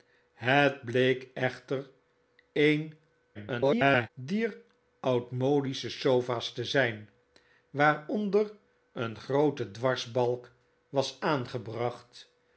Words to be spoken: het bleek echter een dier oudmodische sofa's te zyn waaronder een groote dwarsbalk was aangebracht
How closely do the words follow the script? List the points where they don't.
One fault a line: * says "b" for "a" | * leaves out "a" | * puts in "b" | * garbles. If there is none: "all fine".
* garbles